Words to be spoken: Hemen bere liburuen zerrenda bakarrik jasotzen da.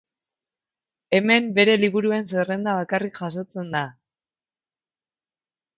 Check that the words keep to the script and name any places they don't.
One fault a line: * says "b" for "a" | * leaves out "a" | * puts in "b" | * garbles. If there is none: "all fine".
all fine